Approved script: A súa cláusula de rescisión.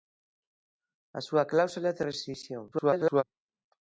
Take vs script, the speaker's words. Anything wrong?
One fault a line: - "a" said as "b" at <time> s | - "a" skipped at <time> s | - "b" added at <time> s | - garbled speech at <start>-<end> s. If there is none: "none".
- garbled speech at 2.7-3.2 s